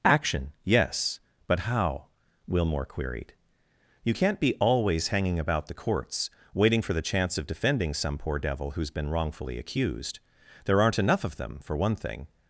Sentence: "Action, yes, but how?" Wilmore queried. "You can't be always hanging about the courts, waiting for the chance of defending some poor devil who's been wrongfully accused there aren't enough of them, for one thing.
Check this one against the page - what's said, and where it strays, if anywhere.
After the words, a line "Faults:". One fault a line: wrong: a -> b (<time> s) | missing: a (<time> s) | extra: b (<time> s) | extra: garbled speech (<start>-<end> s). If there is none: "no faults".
"Action, yes, but how?" Wilmore queried. "You can't be always hanging about the courts, waiting for the chance of defending some poor devil who's been wrongfully accused there aren't enough of them, for one thing.
Faults:
no faults